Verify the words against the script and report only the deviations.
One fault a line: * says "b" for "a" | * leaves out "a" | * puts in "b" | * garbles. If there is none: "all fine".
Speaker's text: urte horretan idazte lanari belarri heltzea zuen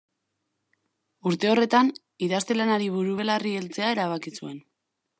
* puts in "buru"
* puts in "erabaki"